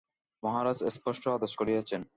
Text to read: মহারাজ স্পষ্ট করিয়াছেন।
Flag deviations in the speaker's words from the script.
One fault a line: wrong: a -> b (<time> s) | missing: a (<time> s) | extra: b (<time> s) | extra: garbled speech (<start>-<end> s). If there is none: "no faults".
extra: আদেশ (1.3 s)